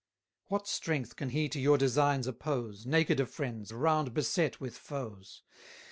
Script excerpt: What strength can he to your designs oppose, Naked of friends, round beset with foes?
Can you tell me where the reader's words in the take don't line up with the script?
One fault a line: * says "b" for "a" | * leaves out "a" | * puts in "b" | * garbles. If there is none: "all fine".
all fine